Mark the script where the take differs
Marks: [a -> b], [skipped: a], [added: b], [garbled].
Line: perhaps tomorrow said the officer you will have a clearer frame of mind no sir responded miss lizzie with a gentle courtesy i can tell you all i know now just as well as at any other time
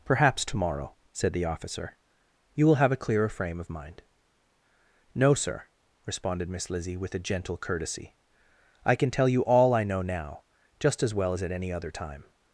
perhaps tomorrow said the officer you will have a clearer frame of mind no sir responded miss lizzie with a gentle courtesy i can tell you all i know now just as well as at any other time